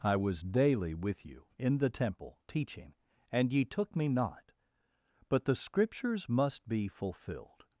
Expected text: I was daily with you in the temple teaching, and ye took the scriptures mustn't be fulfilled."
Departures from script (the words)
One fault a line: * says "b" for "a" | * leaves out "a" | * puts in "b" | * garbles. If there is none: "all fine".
* puts in "me not but"
* says "must" for "mustn't"